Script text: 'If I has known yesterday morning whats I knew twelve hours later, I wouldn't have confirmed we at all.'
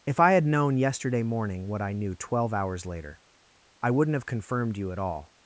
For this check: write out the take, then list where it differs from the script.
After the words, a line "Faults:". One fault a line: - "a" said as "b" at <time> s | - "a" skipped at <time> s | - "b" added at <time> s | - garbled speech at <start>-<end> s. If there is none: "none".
'If I had known yesterday morning what I knew twelve hours later, I wouldn't have confirmed you at all.'
Faults:
- "has" said as "had" at 0.3 s
- "whats" said as "what" at 1.7 s
- "we" said as "you" at 4.8 s